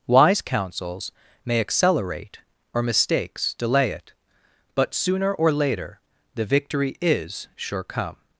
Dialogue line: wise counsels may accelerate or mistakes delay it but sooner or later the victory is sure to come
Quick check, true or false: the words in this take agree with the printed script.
false